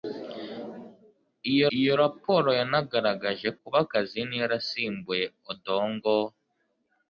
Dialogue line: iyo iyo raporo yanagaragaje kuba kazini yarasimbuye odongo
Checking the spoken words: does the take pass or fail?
pass